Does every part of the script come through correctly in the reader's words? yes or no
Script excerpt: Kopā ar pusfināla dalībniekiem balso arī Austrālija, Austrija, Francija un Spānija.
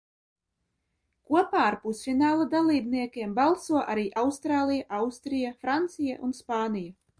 yes